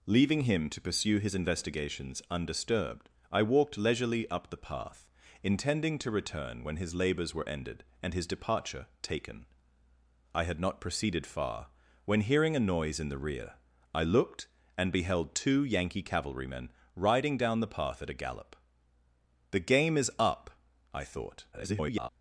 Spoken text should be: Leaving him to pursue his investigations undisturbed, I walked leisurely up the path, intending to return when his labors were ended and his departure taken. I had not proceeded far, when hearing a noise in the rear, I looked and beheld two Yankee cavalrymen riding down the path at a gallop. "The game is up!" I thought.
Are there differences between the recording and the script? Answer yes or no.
yes